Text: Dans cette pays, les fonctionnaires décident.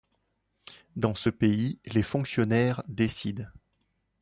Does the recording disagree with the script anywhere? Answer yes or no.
yes